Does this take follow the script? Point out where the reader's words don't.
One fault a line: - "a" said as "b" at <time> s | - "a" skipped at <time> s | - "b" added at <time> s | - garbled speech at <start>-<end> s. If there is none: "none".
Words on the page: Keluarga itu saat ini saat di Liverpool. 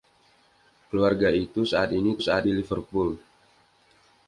none